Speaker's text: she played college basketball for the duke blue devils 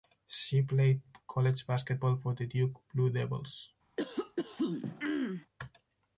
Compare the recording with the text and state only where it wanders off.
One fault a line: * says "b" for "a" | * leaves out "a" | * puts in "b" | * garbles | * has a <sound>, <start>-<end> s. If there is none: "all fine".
* has a throat clearing, 4.0-5.5 s